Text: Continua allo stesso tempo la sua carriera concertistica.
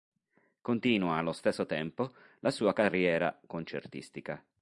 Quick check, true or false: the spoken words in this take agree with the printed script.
true